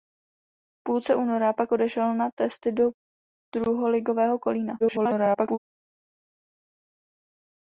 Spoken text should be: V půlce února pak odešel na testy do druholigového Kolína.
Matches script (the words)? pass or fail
fail